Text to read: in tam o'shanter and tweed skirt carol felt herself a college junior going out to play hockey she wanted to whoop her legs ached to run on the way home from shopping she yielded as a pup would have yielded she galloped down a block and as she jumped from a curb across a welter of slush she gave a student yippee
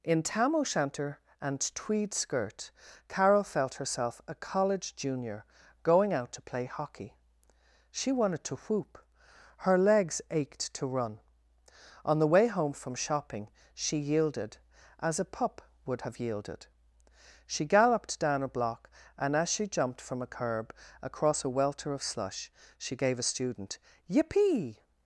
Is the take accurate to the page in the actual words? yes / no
yes